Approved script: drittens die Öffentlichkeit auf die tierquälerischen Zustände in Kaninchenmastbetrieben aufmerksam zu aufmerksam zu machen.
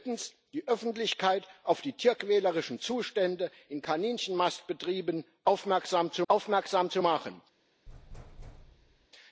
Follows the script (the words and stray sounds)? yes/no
no